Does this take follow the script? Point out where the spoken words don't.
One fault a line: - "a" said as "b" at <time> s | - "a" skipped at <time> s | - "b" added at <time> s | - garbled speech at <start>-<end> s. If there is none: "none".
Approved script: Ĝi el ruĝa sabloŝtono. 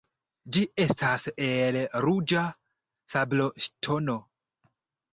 - "estas" added at 0.8 s